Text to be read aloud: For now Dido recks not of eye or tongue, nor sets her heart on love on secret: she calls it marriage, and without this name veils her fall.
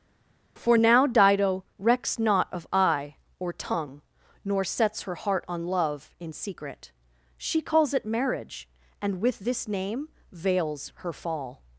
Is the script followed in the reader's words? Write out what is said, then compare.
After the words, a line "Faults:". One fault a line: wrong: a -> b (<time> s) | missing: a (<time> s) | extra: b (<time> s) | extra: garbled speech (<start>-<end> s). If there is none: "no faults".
For now Dido recks not of eye or tongue, nor sets her heart on love in secret: she calls it marriage, and with this name veils her fall.
Faults:
wrong: on -> in (6.2 s)
wrong: without -> with (9.2 s)